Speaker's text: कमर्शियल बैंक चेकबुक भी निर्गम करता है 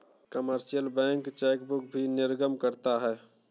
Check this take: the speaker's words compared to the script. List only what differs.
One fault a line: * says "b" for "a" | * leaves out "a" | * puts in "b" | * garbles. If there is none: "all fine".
all fine